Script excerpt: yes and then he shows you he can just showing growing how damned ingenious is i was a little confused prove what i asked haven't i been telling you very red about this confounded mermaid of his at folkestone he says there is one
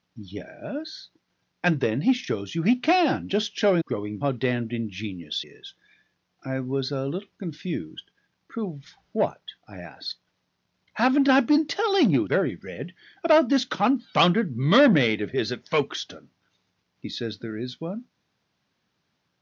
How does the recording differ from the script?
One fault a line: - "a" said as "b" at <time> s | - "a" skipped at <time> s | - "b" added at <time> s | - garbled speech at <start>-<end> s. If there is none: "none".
none